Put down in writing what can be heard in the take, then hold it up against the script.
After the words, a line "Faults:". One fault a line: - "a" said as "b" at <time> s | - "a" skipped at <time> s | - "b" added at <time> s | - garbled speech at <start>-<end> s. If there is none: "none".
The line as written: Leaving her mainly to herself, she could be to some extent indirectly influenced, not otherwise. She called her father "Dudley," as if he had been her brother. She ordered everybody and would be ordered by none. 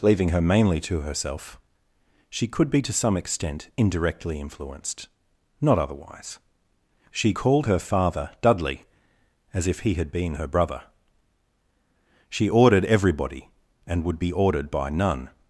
Leaving her mainly to herself, she could be to some extent indirectly influenced, not otherwise. She called her father "Dudley," as if he had been her brother. She ordered everybody and would be ordered by none.
Faults:
none